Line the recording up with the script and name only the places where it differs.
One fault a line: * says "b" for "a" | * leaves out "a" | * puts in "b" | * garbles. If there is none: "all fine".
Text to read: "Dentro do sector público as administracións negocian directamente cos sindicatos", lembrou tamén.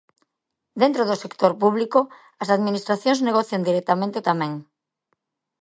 * leaves out "cos sindicatos lembrou"